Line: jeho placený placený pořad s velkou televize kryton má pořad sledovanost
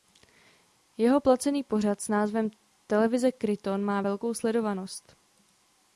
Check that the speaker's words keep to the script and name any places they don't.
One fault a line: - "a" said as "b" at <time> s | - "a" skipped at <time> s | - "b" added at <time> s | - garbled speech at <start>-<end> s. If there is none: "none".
- "placený" skipped at 1.6 s
- "velkou" said as "názvem" at 2.1 s
- "pořad" said as "velkou" at 4.0 s